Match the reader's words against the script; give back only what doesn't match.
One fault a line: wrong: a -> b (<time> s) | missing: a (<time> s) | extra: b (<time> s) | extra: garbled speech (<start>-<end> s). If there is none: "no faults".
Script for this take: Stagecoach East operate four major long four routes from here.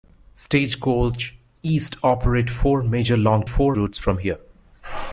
no faults